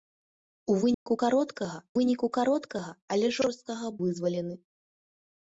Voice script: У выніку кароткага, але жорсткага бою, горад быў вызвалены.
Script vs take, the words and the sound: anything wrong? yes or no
yes